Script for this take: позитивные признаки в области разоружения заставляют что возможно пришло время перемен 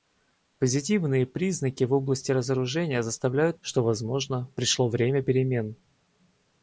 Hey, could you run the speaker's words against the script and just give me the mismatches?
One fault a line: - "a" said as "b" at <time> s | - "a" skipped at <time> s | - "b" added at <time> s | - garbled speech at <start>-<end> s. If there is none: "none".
none